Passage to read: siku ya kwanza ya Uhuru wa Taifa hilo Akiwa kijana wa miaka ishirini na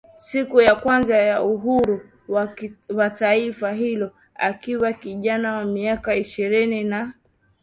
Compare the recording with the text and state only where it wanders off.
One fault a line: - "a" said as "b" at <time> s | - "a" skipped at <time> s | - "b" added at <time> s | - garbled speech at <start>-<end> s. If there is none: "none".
none